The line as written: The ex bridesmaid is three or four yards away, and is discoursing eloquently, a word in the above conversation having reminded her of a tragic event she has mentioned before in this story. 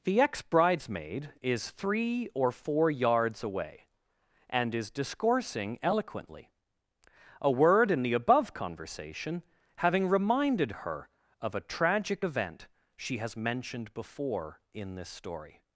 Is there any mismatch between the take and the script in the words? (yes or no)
no